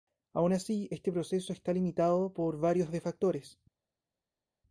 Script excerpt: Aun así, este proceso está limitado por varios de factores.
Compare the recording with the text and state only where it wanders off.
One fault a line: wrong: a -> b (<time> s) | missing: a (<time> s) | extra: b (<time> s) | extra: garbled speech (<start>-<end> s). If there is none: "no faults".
no faults